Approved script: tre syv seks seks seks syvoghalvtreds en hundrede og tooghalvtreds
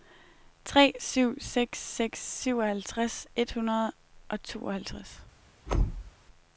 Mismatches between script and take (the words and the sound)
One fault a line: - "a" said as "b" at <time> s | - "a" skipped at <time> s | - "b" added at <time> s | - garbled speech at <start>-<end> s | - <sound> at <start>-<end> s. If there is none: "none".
- "seks" skipped at 2.2 s
- "en" said as "et" at 3.4 s
- thud at 5.7-6.1 s